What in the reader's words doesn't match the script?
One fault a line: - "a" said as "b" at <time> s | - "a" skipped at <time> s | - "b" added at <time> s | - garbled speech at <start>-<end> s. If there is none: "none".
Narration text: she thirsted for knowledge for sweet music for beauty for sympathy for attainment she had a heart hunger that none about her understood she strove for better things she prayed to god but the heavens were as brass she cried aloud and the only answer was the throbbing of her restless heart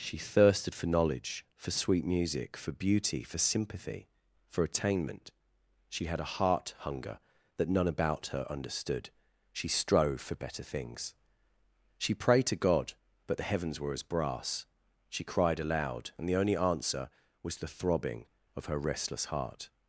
none